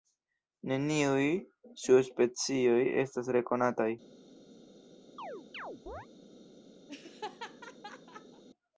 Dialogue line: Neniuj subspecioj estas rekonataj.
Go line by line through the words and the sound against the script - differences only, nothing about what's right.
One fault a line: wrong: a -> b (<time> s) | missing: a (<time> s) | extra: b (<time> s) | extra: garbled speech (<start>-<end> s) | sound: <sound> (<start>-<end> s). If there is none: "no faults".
sound: chirp (5.2-6.1 s)
sound: laugh (6.9-8.4 s)